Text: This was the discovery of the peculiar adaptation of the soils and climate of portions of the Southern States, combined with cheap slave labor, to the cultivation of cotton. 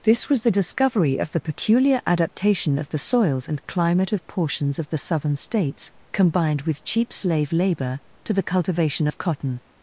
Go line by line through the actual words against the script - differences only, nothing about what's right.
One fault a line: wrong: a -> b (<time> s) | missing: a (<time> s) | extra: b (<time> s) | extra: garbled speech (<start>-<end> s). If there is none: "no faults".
no faults